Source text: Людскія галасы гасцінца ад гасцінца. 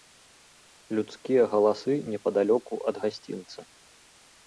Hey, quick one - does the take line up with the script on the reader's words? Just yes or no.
no